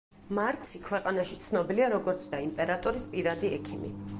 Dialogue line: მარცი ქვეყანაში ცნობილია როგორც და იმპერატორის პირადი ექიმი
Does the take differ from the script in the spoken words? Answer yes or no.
no